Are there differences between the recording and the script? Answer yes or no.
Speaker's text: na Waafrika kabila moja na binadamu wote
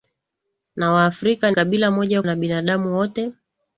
no